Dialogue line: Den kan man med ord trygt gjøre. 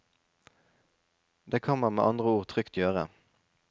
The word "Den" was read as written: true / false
false